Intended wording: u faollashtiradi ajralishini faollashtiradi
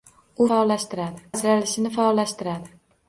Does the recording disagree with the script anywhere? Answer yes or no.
no